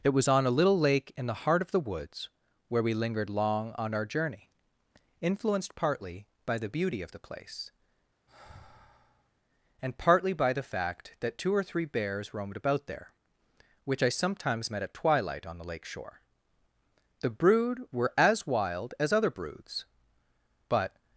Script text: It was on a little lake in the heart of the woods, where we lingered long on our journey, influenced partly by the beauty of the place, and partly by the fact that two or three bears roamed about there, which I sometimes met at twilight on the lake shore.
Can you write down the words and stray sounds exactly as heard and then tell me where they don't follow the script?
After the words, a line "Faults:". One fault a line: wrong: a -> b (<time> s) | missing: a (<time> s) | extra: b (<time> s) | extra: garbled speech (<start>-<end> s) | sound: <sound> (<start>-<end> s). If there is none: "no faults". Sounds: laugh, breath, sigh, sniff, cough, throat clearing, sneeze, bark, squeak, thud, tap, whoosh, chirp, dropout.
It was on a little lake in the heart of the woods, where we lingered long on our journey, influenced partly by the beauty of the place, and partly by the fact that two or three bears roamed about there, which I sometimes met at twilight on the lake shore. The brood were as wild as other broods; but
Faults:
sound: sigh (8.3-9.3 s)
extra: The brood were as wild as other broods but (17.2 s)